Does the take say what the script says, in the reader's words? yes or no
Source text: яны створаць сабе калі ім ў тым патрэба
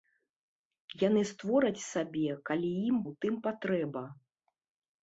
yes